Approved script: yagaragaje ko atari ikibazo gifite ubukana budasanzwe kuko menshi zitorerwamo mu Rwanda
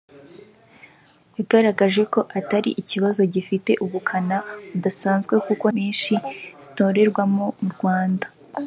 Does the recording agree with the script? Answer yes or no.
yes